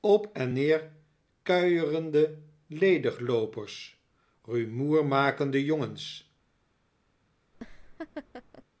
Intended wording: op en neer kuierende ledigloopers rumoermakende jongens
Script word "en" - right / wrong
right